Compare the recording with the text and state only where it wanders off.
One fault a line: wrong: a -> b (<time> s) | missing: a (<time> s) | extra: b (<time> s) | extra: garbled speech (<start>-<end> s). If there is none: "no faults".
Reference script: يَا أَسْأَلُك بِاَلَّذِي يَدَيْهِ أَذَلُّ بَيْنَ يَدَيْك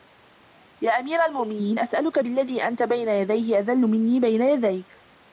extra: أَمِيرَ الْمُؤْمِنِينَ (0.9 s)
extra: أَنْتَ بَيْنَ (2.7 s)
extra: مِنِّي (3.8 s)